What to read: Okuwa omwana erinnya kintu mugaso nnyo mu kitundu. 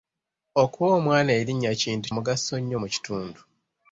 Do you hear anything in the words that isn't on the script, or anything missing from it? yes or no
no